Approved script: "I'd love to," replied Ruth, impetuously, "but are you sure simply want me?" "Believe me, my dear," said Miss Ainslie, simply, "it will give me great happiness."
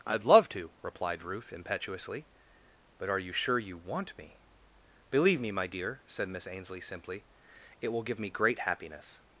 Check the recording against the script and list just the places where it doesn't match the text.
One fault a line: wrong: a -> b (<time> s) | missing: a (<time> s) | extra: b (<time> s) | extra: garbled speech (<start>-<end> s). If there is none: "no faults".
wrong: simply -> you (3.6 s)